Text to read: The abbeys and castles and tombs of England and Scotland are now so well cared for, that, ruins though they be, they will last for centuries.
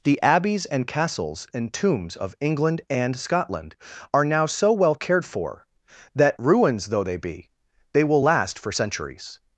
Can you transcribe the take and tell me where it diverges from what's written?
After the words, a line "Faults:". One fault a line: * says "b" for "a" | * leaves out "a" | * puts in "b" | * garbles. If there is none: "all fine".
The abbeys and castles and tombs of England and Scotland are now so well cared for, that, ruins though they be, they will last for centuries.
Faults:
all fine